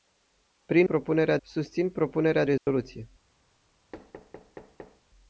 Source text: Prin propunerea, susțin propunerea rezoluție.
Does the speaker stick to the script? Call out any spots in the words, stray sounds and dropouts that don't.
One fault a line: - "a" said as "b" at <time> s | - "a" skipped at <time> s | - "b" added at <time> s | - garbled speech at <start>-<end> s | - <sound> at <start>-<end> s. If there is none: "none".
- dropout at 2.6-2.7 s
- thud at 3.9-5.0 s